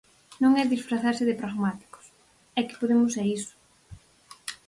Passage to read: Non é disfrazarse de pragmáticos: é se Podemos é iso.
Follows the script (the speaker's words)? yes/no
no